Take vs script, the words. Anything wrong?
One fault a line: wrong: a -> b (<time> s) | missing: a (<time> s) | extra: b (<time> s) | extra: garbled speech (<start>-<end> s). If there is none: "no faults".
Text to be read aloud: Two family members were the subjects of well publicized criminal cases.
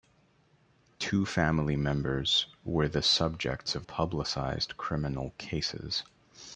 missing: well (3.9 s)